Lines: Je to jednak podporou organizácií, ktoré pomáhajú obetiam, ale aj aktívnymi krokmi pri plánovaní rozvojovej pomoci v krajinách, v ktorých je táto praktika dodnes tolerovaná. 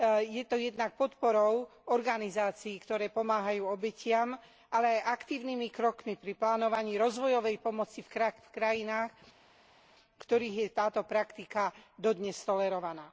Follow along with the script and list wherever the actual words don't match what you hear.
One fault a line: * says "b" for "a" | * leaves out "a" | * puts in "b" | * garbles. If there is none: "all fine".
all fine